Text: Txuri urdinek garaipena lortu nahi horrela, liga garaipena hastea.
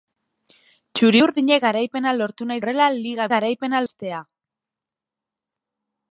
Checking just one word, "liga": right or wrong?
right